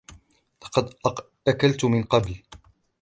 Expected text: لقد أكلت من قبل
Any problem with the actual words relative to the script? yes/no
no